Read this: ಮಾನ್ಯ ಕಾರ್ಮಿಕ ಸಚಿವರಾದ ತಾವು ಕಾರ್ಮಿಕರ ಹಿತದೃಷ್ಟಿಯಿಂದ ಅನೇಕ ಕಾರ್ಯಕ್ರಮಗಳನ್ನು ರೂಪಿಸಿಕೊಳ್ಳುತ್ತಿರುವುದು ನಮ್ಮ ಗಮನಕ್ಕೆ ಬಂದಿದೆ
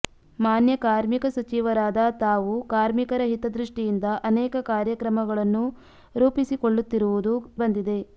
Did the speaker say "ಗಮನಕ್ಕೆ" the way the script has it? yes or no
no